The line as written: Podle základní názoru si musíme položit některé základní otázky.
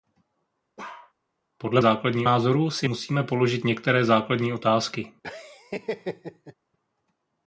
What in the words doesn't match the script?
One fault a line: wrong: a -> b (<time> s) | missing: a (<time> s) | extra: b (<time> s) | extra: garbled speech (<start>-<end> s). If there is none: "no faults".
no faults